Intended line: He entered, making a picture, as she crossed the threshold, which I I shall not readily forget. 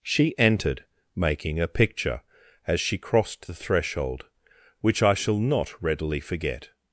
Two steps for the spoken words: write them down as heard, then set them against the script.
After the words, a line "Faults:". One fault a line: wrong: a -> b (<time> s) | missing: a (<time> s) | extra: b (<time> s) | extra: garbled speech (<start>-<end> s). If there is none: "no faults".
She entered, making a picture, as she crossed the threshold, which I shall not readily forget.
Faults:
wrong: He -> She (0.0 s)
missing: I (5.1 s)